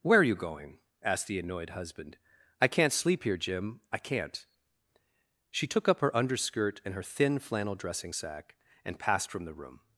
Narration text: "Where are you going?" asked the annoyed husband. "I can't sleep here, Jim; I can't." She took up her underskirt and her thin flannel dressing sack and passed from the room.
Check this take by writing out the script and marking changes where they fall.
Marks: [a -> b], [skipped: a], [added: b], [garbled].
"Where are you going?" asked the annoyed husband. "I can't sleep here, Jim; I can't." She took up her underskirt and her thin flannel dressing sack and passed from the room.